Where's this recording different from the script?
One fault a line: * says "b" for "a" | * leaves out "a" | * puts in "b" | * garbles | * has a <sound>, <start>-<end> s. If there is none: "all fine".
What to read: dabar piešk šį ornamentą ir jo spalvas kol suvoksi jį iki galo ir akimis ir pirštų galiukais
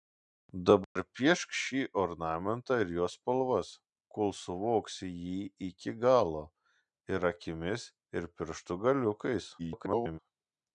* has a dropout, 0.8-1.0 s
* garbles